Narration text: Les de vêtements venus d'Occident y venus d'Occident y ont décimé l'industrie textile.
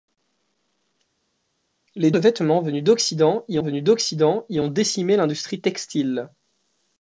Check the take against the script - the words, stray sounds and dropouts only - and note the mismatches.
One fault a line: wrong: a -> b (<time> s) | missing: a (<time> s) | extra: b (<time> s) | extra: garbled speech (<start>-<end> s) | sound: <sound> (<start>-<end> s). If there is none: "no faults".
no faults